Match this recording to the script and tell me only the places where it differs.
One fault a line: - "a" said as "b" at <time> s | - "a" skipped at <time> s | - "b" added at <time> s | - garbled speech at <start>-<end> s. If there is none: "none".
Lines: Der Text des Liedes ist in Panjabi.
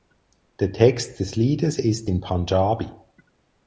none